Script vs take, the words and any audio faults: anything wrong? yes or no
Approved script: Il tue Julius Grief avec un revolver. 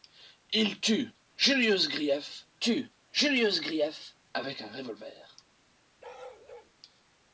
yes